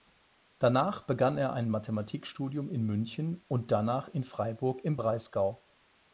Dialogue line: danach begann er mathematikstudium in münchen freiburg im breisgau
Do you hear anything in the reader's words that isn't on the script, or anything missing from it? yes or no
yes